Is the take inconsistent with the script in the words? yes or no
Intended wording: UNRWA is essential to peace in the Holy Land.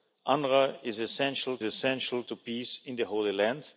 yes